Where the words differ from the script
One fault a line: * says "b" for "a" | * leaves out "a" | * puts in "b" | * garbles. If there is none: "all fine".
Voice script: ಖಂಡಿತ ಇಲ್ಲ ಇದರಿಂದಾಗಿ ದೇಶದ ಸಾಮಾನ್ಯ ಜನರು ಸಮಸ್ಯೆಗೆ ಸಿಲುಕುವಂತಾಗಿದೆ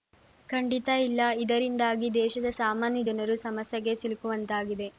all fine